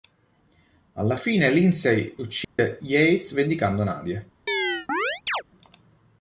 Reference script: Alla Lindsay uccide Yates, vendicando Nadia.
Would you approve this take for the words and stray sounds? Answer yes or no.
no